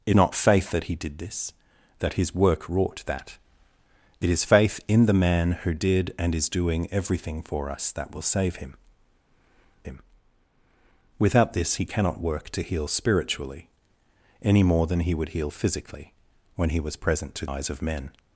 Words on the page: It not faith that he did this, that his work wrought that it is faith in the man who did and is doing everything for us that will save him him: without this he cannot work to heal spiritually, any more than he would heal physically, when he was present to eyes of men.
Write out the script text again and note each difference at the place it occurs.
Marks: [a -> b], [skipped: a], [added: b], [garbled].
It not faith that he did this, that his work wrought that it is faith in the man who did and is doing everything for us that will save him him: without this he cannot work to heal spiritually, any more than he would heal physically, when he was present to eyes of men.